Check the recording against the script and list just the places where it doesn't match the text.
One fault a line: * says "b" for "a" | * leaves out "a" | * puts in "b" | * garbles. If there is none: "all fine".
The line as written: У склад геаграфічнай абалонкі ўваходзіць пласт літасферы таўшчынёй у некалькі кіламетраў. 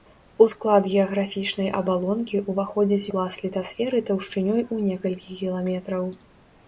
all fine